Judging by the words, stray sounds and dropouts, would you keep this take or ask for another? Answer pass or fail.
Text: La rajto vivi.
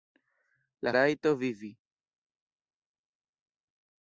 pass